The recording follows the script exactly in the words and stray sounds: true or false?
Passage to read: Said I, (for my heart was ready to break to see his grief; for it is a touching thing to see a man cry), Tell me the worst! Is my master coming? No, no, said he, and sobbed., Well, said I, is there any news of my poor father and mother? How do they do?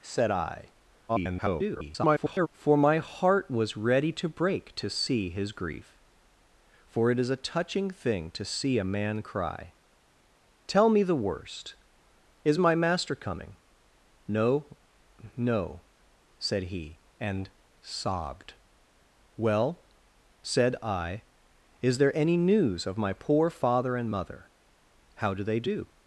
false